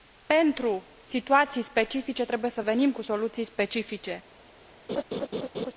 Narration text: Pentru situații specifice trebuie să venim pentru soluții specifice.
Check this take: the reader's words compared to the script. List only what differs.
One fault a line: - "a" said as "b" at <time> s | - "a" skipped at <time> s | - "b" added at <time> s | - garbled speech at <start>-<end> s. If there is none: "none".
- "pentru" said as "cu" at 2.9 s